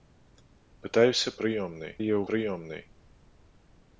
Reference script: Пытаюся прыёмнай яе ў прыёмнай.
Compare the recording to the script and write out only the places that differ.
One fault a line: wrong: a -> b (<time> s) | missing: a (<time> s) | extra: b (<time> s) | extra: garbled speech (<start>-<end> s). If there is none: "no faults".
no faults